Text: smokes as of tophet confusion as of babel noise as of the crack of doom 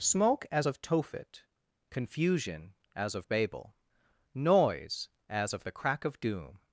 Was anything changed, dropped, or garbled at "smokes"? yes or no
yes